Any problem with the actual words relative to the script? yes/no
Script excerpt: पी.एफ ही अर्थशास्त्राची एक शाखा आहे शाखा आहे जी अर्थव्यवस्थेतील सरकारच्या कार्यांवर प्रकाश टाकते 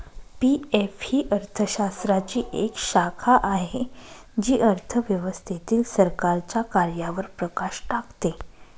yes